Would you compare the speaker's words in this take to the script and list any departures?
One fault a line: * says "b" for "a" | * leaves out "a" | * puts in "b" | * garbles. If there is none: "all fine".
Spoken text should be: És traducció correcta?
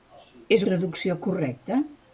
all fine